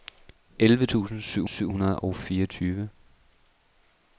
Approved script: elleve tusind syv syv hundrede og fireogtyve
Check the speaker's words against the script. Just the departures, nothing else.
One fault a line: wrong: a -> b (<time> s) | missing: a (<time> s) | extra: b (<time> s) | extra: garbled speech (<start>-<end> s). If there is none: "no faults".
no faults